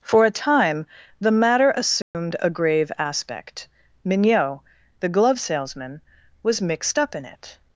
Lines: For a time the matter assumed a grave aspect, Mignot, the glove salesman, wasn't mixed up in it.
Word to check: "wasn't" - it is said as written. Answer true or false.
false